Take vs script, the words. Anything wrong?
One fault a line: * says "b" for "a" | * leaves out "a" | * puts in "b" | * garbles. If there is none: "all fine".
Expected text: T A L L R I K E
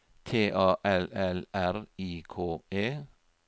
all fine